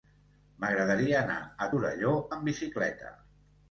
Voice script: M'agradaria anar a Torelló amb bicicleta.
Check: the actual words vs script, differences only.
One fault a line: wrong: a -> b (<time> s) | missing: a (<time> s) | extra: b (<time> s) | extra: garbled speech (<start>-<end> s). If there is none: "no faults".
no faults